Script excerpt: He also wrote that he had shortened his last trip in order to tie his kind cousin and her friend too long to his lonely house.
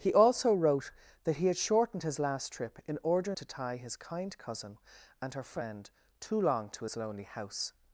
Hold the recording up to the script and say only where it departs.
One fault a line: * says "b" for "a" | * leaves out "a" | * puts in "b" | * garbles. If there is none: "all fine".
all fine